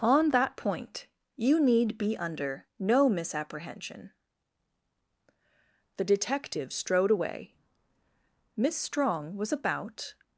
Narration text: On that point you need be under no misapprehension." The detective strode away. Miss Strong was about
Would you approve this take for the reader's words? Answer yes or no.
yes